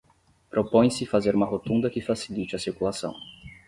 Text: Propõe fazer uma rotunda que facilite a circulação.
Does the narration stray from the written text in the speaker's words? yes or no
yes